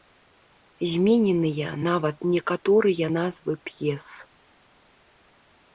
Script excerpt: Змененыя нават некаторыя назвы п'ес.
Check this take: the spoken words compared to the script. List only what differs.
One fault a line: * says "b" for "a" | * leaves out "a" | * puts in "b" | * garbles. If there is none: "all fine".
all fine